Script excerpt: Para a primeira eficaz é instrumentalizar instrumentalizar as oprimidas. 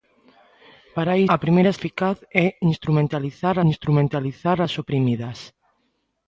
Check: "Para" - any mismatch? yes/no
no